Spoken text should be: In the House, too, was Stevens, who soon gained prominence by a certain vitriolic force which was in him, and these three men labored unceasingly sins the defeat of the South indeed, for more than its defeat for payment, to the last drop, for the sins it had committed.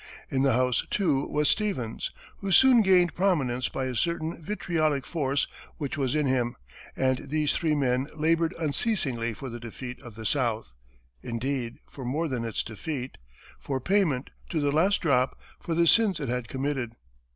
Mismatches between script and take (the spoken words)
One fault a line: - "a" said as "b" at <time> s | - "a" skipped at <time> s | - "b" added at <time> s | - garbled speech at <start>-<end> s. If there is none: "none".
- "sins" said as "for" at 9.3 s